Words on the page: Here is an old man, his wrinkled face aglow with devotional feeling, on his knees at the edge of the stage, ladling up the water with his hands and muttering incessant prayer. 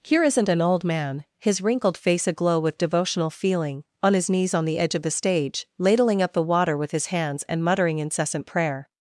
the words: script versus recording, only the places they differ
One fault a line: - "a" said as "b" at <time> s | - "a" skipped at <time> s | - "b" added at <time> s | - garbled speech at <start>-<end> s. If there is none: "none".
- "is" said as "isn't" at 0.2 s
- "at" said as "on" at 4.5 s